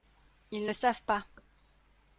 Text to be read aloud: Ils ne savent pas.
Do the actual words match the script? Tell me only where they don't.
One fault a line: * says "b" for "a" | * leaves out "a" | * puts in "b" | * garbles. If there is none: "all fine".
all fine